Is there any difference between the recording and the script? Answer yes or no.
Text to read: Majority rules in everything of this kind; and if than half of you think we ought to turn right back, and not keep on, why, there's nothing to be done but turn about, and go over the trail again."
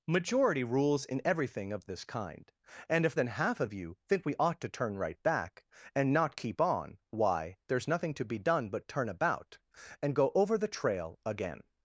no